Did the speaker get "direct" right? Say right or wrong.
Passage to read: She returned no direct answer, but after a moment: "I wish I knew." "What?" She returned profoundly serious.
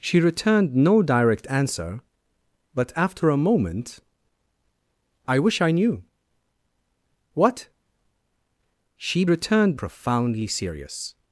right